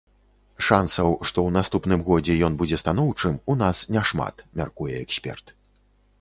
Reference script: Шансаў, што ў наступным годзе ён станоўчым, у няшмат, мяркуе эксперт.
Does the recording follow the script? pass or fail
fail